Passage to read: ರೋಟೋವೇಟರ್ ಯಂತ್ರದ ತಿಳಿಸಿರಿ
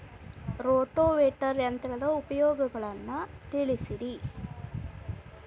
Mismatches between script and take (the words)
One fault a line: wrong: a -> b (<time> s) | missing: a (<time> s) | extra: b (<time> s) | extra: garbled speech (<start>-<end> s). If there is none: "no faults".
extra: ಉಪಯೋಗಗಳನ್ನ (2.2 s)